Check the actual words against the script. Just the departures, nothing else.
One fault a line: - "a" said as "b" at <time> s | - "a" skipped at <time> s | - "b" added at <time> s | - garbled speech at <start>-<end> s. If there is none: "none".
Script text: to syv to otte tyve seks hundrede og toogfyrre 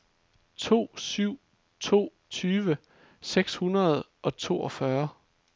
- "otte" skipped at 2.1 s